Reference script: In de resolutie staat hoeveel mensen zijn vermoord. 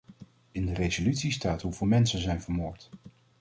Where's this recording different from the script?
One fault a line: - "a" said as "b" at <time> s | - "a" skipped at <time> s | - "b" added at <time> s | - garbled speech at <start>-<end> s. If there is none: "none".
none